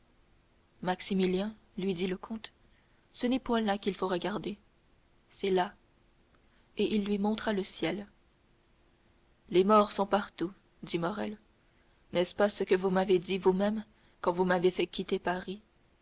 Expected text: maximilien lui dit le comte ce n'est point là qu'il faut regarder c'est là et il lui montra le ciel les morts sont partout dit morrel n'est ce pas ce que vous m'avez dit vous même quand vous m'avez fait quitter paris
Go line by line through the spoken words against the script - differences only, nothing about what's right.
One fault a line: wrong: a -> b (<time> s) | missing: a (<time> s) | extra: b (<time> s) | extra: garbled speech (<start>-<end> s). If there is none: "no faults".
no faults